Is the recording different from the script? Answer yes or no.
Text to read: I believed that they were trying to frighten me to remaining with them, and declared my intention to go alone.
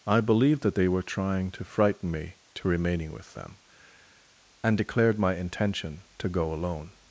no